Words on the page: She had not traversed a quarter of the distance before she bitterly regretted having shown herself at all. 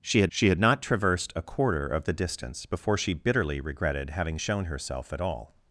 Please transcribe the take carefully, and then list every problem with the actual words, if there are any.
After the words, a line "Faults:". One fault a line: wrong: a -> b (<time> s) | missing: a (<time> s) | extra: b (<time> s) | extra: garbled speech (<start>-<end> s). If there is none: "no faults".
She had she had not traversed a quarter of the distance before she bitterly regretted having shown herself at all.
Faults:
extra: she had (0.3 s)